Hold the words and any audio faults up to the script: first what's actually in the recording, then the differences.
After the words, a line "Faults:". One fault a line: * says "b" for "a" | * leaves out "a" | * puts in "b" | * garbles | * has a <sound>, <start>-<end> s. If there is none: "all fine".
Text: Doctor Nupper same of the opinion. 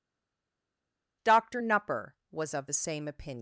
Doctor Nupper was of the same opinion.
Faults:
* says "was" for "same"
* puts in "same"